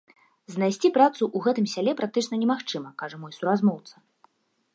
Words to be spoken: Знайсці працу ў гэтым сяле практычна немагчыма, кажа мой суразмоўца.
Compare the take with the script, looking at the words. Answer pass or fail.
pass